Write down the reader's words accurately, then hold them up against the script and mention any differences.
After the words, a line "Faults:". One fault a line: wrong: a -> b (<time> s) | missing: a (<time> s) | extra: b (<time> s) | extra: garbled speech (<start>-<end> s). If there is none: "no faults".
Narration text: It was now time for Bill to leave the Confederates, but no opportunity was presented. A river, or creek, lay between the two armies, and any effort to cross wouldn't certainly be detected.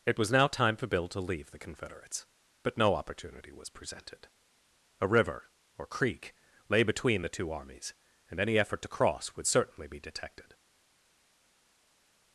It was now time for Bill to leave the Confederates, but no opportunity was presented. A river, or creek, lay between the two armies, and any effort to cross would certainly be detected.
Faults:
wrong: wouldn't -> would (9.4 s)